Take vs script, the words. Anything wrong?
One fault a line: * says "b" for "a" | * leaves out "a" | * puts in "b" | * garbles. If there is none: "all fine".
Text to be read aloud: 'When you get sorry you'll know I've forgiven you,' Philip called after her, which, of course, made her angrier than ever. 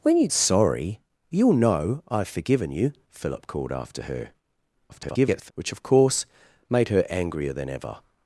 * leaves out "get"
* garbles